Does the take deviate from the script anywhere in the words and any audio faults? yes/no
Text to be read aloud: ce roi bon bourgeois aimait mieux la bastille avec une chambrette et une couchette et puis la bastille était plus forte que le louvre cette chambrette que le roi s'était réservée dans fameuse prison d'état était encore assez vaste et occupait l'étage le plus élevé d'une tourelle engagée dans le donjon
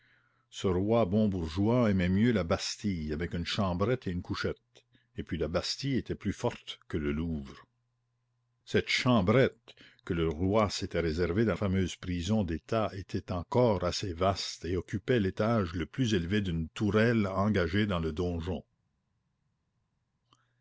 no